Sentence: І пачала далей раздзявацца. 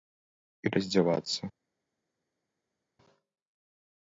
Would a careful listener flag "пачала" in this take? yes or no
yes